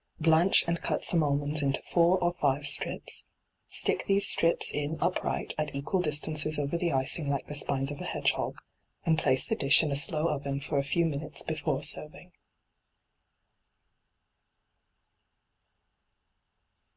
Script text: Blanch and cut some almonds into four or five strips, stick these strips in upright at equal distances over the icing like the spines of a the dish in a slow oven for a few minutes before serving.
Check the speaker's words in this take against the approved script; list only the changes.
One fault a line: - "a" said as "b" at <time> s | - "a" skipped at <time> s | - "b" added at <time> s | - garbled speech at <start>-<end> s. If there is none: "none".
- "hedgehog and place" added at 8.0 s